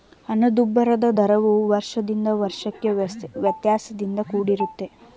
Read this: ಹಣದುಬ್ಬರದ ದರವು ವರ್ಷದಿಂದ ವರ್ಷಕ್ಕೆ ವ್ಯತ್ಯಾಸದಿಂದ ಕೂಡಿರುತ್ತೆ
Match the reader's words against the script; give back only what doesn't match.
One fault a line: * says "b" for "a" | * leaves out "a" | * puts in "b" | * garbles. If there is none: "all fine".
all fine